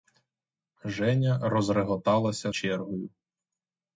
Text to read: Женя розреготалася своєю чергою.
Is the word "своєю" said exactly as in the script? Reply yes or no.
no